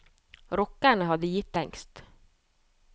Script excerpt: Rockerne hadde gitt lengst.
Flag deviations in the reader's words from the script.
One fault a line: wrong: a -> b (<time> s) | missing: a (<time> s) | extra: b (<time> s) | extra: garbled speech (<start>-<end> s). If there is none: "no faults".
no faults